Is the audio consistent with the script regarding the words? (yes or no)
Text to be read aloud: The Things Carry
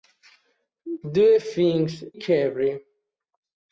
yes